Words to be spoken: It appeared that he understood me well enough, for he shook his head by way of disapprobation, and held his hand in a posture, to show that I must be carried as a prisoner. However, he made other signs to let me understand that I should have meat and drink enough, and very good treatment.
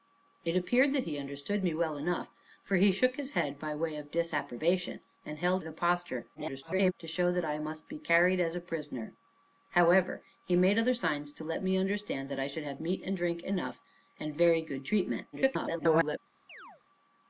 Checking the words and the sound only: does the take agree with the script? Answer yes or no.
no